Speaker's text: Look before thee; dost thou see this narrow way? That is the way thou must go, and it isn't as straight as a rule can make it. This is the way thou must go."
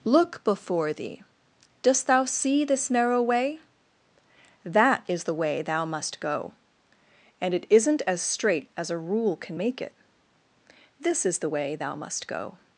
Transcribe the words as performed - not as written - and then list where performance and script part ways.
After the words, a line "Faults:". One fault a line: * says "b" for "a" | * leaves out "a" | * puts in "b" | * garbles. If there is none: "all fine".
Look before thee; dost thou see this narrow way? That is the way thou must go, and it isn't as straight as a rule can make it. This is the way thou must go."
Faults:
all fine